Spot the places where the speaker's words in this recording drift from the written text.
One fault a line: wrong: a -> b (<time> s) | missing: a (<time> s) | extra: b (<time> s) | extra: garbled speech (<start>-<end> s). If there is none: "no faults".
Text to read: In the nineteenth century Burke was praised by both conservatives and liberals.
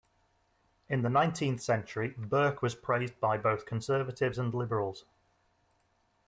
no faults